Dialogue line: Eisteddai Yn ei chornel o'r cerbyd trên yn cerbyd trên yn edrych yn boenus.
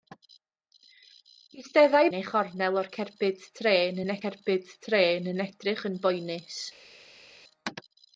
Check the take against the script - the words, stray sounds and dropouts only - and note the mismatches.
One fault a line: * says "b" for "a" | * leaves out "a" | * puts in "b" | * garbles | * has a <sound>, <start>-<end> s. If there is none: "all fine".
all fine